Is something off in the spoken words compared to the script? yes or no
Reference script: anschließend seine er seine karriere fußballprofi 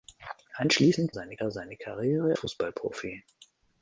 no